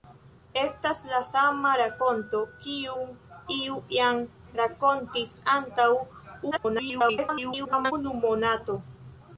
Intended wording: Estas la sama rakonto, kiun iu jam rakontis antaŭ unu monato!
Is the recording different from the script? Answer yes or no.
yes